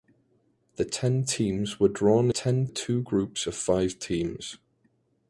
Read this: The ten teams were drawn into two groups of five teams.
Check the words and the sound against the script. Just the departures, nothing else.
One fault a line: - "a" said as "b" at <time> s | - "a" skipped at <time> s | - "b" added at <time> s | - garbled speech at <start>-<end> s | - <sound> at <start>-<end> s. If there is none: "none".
- "into" said as "ten" at 2.3 s